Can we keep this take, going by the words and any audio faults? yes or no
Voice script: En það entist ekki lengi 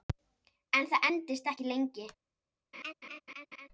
no